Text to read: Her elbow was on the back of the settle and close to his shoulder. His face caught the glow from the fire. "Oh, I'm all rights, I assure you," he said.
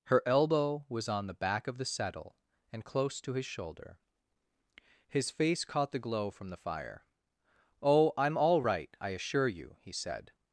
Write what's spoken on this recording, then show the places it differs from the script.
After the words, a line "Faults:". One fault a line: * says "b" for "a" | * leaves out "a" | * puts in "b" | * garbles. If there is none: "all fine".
Her elbow was on the back of the settle and close to his shoulder. His face caught the glow from the fire. "Oh, I'm all right, I assure you," he said.
Faults:
* says "right" for "rights"